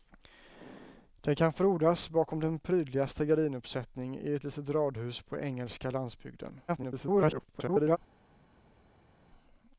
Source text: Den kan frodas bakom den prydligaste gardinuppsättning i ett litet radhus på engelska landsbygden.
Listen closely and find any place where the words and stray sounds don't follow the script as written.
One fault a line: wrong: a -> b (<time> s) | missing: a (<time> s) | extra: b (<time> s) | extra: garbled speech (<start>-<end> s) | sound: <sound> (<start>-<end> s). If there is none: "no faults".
extra: garbled speech (6.7-8.0 s)